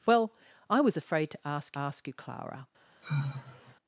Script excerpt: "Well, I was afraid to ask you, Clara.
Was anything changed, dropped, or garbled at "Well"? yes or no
no